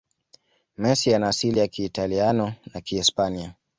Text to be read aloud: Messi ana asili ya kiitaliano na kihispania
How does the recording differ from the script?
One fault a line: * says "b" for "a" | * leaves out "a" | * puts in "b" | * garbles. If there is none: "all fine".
all fine